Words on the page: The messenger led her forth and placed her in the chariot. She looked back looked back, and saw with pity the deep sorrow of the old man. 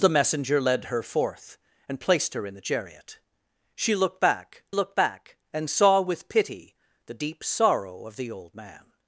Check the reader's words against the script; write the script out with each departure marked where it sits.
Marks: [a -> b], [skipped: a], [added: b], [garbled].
The messenger led her forth and placed her in the chariot. She looked back looked back, and saw with pity the deep sorrow of the old man.